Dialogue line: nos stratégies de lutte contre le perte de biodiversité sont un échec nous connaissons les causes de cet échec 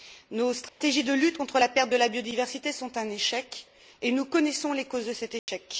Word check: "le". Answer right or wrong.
wrong